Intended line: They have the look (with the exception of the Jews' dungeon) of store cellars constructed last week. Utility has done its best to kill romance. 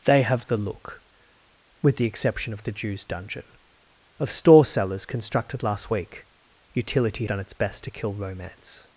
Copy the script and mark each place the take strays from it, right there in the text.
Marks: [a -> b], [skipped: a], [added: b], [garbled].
They have the look (with the exception of the Jews' dungeon) of store cellars constructed last week. Utility [skipped: has] done its best to kill romance.